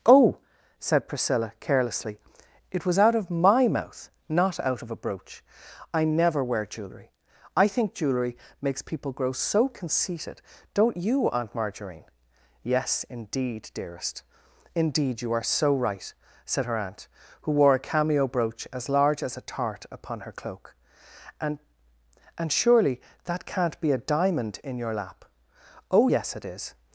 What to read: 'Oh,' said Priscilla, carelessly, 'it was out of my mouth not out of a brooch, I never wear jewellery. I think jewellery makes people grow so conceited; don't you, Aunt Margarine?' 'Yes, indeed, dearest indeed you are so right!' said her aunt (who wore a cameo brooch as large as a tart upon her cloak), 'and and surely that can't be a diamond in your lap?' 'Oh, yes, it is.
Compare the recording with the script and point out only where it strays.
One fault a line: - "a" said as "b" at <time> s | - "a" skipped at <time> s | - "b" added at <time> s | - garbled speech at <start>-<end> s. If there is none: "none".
none